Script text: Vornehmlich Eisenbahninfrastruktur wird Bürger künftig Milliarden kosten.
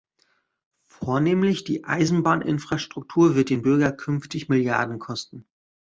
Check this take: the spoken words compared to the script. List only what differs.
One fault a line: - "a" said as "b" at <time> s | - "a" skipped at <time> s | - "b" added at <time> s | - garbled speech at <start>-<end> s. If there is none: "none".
- "die" added at 1.6 s
- "den" added at 3.5 s